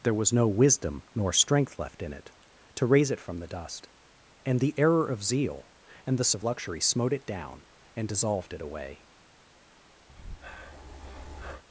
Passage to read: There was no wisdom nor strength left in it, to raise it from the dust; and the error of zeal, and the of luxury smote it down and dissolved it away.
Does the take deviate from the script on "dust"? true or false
false